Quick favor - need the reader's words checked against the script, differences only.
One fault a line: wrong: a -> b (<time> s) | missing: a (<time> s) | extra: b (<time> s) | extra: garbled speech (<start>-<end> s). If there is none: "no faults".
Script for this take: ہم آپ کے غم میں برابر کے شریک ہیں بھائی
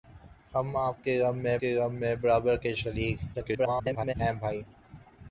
extra: کے غم میں (1.6 s)
extra: garbled speech (3.3-4.1 s)